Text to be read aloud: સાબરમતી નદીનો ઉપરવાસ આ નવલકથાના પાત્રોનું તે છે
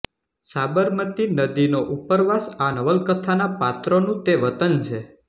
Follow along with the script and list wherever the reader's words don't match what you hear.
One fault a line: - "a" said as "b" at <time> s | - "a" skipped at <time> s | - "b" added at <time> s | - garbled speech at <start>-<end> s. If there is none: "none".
- "વતન" added at 4.4 s